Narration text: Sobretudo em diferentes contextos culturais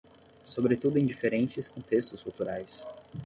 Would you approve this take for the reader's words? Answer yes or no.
yes